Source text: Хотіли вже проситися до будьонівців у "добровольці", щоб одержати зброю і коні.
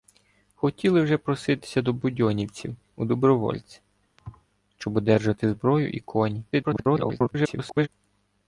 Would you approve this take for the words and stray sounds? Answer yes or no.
no